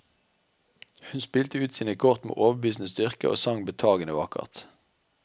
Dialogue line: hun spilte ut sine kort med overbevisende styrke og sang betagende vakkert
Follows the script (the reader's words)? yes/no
yes